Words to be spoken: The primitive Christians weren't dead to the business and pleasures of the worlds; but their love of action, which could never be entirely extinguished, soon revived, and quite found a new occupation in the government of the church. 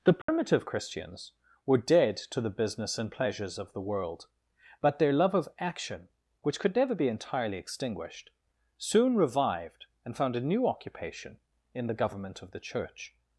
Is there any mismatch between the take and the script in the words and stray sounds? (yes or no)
yes